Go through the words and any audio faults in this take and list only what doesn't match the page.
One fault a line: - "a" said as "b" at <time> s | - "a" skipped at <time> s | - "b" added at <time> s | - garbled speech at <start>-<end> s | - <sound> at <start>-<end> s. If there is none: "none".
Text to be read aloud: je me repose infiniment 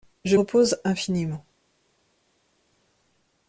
- "me" skipped at 0.3 s